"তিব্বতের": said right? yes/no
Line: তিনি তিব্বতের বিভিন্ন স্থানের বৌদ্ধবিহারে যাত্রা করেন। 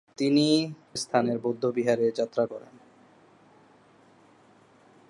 no